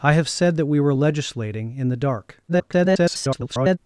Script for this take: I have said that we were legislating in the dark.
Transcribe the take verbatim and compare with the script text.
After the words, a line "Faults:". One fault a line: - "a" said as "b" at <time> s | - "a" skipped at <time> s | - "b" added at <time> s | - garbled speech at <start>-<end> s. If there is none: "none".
I have said that we were legislating in the dark. [garbled]
Faults:
- garbled speech at 2.5-3.8 s